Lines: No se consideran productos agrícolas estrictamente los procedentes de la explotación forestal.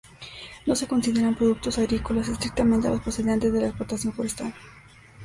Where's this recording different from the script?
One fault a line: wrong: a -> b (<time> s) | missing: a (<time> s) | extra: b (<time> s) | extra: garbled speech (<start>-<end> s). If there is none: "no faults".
no faults